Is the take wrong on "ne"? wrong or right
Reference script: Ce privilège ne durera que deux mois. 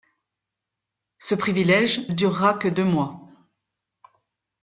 wrong